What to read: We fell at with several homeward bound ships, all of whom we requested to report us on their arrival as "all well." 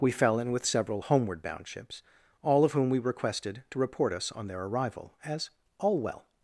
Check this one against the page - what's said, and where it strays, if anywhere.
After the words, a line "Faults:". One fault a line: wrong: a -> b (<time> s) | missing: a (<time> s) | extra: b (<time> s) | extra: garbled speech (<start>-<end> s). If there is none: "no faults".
We fell in with several homeward bound ships, all of whom we requested to report us on their arrival as "all well."
Faults:
wrong: at -> in (0.4 s)